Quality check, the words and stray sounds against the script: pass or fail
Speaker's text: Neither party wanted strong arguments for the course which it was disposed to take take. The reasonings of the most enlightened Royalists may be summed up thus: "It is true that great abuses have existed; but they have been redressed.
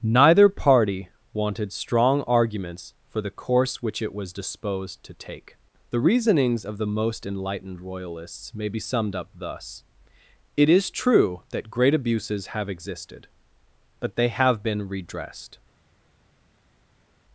fail